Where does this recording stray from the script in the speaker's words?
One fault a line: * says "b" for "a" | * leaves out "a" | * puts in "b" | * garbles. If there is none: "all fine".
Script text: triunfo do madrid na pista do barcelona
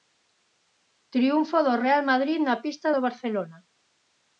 * puts in "real"